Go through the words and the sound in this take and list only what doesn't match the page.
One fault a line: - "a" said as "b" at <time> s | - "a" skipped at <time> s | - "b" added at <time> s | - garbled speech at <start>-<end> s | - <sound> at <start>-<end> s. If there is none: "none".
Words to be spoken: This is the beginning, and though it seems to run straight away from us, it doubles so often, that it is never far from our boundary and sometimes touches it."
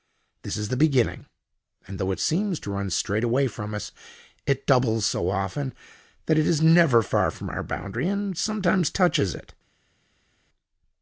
none